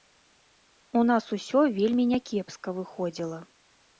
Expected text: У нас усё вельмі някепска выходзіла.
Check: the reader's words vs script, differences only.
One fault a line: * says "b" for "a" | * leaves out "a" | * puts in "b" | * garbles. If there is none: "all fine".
all fine